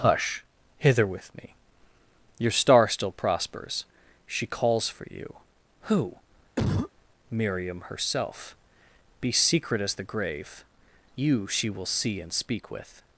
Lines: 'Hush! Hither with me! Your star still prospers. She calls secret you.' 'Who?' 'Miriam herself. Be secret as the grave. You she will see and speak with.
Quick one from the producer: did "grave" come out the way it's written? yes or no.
yes